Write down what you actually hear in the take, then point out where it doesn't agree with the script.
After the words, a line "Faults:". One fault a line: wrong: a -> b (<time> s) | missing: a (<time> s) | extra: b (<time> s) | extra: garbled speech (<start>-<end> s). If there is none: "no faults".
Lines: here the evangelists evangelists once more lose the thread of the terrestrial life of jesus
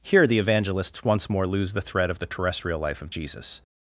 here the evangelists once more lose the thread of the terrestrial life of jesus
Faults:
missing: evangelists (1.0 s)